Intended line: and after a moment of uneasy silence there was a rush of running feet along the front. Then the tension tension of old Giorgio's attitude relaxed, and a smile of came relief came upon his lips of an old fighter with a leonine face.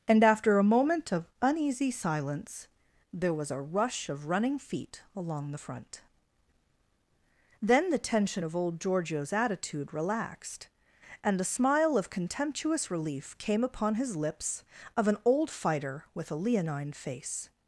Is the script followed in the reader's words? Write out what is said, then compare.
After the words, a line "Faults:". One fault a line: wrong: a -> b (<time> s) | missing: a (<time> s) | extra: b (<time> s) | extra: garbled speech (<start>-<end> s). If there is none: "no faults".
and after a moment of uneasy silence there was a rush of running feet along the front. Then the tension of old Giorgio's attitude relaxed, and a smile of contemptuous relief came upon his lips of an old fighter with a leonine face.
Faults:
missing: tension (8.4 s)
wrong: came -> contemptuous (12.1 s)